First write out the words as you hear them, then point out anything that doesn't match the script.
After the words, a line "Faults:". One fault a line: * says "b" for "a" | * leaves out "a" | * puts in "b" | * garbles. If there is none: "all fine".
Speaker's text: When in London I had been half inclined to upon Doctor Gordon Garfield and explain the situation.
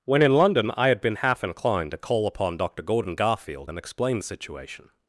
When in London I had been half inclined to call upon Doctor Gordon Garfield and explain the situation.
Faults:
* puts in "call"